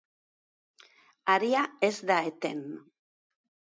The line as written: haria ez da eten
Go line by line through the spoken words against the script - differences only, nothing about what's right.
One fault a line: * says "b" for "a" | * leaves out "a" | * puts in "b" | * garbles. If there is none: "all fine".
all fine